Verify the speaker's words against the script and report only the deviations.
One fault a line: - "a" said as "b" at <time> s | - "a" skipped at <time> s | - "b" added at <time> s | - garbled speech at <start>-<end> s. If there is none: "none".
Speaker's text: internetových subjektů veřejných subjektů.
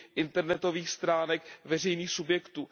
- "subjektů" said as "stránek" at 0.9 s